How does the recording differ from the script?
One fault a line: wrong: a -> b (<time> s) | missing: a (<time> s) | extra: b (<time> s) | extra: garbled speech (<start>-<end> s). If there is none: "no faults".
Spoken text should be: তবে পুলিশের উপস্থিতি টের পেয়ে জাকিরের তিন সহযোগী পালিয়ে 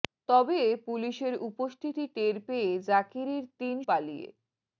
missing: সহযোগী (3.8 s)